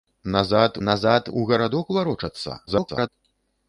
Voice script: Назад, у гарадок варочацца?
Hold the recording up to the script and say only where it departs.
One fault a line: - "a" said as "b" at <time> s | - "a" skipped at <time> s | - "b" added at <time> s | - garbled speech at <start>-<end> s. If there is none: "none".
- "назад" added at 0.9 s
- garbled speech at 2.7-3.1 s